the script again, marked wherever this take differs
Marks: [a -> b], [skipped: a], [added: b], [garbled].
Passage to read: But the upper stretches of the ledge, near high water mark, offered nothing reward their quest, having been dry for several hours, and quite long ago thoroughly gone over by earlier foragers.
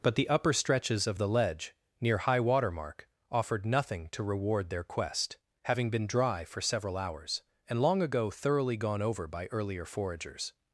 But the upper stretches of the ledge, near high water mark, offered nothing [added: to] reward their quest, having been dry for several hours, and [skipped: quite] long ago thoroughly gone over by earlier foragers.